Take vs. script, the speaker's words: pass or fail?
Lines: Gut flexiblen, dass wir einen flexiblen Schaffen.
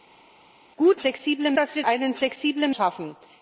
pass